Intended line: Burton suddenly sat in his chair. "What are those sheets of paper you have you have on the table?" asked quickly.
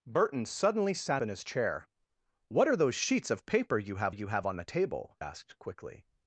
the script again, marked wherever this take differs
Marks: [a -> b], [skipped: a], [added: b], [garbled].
Burton suddenly sat in his chair. "What are those sheets of paper you have you have on the table?" asked quickly.